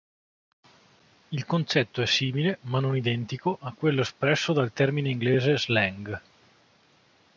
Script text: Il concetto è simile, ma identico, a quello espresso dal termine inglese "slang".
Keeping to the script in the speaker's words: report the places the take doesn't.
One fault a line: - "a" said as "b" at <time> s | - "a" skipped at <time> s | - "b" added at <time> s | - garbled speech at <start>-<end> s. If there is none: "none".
- "non" added at 2.8 s